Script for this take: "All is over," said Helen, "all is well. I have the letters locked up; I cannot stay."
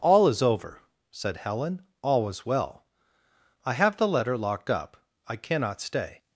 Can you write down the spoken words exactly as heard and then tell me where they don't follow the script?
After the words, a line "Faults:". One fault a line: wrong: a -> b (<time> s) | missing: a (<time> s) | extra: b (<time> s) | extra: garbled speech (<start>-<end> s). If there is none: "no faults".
"All is over," said Helen, "all was well. I have the letter locked up; I cannot stay."
Faults:
wrong: is -> was (2.2 s)
wrong: letters -> letter (4.1 s)